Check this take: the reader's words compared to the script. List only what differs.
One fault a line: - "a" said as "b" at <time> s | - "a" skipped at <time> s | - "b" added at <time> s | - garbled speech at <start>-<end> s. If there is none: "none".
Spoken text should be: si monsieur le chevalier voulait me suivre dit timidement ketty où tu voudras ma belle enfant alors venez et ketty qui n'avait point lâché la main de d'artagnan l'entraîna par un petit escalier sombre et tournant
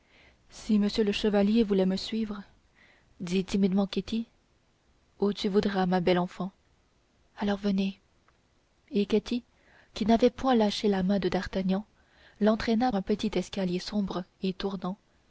- "par" skipped at 12.9 s